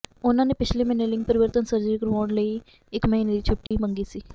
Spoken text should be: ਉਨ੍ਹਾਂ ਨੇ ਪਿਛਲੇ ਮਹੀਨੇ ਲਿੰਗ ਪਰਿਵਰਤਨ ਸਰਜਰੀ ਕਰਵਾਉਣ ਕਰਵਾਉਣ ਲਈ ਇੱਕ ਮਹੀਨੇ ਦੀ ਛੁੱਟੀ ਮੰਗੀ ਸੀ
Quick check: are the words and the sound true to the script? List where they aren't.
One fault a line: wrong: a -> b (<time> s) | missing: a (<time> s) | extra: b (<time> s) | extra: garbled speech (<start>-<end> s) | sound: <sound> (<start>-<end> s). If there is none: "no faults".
missing: ਕਰਵਾਉਣ (2.3 s)
sound: dropout (3.7-3.7 s)